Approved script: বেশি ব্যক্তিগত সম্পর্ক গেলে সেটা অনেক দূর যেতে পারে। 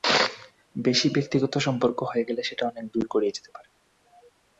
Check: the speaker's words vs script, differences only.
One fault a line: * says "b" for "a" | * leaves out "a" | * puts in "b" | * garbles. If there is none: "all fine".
* puts in "হয়ে"
* puts in "গড়িয়ে"